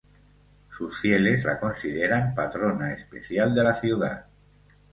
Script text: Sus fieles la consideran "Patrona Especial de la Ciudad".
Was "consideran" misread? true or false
false